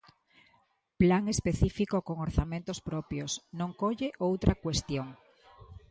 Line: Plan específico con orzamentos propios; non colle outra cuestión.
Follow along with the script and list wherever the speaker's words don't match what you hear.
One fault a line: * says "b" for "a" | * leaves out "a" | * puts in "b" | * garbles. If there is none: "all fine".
all fine